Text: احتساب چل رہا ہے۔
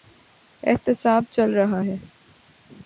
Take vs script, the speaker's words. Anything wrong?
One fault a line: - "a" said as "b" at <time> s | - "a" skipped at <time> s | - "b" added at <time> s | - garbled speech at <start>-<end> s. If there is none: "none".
none